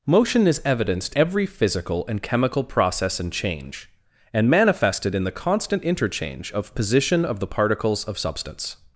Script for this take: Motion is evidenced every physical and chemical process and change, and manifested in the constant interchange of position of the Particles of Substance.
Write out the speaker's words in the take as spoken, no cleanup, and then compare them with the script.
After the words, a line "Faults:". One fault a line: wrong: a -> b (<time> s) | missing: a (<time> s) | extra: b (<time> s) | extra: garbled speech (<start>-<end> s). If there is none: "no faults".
Motion is evidenced every physical and chemical process and change, and manifested in the constant interchange of position of the Particles of Substance.
Faults:
no faults